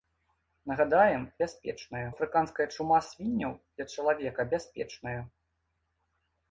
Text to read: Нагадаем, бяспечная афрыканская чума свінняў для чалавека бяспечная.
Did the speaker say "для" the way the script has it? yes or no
yes